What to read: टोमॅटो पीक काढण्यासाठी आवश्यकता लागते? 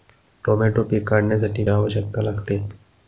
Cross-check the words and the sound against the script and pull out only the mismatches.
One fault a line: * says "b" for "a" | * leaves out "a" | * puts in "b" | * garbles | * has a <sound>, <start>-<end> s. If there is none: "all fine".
all fine